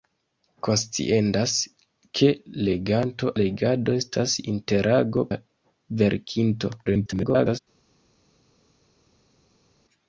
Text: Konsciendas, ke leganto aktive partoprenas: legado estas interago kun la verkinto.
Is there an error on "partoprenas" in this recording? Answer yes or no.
yes